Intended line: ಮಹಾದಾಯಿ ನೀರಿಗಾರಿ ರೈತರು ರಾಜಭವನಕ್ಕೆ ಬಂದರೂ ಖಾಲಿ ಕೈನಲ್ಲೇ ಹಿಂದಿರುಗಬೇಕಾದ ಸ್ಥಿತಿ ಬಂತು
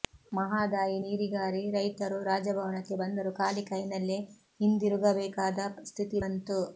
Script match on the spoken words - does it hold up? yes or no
yes